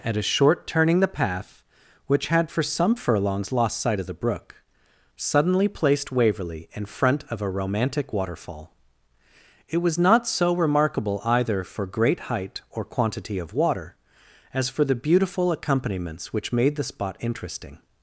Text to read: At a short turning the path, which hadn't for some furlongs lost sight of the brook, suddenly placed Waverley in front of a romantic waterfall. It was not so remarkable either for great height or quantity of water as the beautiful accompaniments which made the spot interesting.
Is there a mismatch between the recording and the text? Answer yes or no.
yes